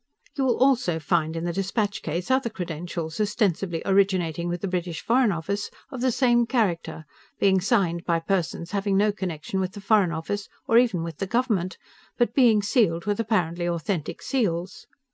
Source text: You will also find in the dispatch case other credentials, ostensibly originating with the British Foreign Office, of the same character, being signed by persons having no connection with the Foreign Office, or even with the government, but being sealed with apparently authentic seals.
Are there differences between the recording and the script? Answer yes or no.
no